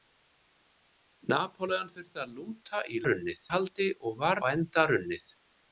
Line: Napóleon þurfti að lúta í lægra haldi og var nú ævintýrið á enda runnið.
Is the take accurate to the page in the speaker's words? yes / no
no